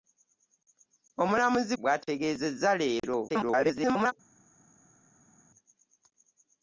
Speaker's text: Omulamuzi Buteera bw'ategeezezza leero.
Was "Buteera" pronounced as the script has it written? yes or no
no